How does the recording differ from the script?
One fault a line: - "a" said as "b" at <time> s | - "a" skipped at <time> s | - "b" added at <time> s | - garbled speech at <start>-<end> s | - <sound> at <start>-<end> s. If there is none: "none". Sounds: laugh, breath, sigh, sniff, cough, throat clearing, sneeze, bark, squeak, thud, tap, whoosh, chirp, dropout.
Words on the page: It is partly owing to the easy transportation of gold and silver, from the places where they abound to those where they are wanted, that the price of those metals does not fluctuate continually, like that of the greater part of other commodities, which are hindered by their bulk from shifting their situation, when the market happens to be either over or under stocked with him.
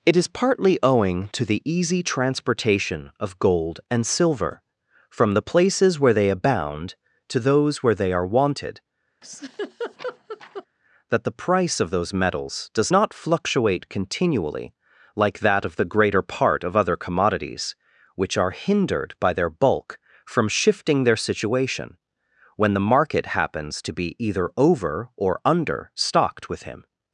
- laugh at 9.2-10.7 s